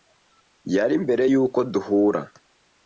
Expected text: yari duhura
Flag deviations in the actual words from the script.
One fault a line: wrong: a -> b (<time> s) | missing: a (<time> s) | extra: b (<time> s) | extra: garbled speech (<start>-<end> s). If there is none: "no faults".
extra: mbere yuko (1.0 s)